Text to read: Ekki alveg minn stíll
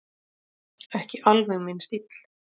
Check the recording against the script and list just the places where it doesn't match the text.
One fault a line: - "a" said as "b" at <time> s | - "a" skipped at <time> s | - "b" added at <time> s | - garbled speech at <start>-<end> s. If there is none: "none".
none